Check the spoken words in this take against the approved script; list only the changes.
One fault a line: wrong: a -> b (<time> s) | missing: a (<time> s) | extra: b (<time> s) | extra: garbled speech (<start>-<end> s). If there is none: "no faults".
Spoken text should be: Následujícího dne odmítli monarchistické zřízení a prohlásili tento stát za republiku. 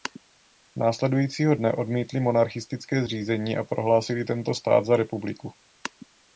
no faults